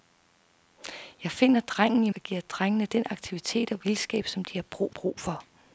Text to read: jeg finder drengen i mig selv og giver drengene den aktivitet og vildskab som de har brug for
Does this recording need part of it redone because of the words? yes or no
yes